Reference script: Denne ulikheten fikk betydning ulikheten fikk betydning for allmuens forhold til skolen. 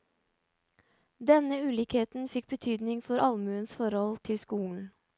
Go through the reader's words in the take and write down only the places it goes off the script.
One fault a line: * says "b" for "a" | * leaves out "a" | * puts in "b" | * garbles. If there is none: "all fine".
* leaves out "ulikheten fikk betydning"